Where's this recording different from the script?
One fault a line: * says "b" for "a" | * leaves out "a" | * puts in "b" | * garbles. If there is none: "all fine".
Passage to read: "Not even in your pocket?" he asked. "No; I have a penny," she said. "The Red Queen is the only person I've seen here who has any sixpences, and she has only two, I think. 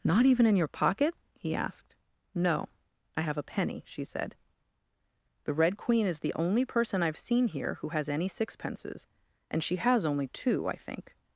all fine